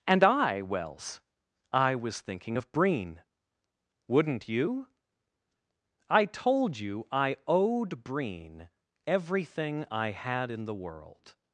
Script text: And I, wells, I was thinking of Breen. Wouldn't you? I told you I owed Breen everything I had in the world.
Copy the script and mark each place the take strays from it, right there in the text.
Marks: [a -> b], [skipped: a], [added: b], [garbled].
And I, wells, I was thinking of Breen. Wouldn't you? I told you I owed Breen everything I had in the world.